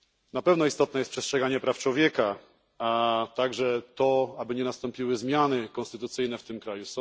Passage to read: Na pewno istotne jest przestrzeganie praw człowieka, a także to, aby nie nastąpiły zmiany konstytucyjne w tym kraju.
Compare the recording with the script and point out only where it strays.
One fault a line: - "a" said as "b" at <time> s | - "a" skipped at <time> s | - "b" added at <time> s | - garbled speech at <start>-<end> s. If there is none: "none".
none